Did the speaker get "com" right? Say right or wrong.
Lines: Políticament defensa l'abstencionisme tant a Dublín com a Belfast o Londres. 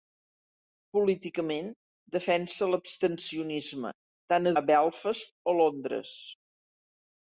wrong